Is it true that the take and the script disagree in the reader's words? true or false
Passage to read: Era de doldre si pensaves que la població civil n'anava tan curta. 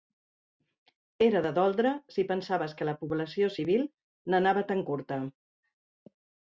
false